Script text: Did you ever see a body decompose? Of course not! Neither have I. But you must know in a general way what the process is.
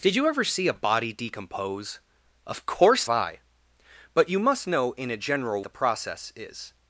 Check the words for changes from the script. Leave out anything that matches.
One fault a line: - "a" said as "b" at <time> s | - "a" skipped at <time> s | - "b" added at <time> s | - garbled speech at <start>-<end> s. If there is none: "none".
- "not Neither have" skipped at 3.1 s
- "way what" skipped at 5.6 s